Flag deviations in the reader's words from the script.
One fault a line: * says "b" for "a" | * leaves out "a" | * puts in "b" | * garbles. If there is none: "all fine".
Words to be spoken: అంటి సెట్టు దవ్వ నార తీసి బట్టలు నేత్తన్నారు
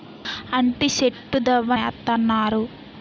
* leaves out "నార తీసి బట్టలు"